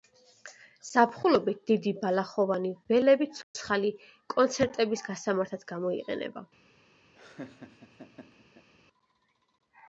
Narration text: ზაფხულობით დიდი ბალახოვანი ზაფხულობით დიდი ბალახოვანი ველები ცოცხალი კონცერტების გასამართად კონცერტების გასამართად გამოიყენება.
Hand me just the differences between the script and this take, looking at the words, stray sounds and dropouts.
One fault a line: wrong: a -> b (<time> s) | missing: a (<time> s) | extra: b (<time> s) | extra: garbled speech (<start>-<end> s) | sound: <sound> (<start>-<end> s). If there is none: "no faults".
missing: ზაფხულობით დიდი ბალახოვანი (2.7 s)
sound: dropout (3.4-3.5 s)
missing: კონცერტების გასამართად (5.7 s)
sound: laugh (7.1-8.7 s)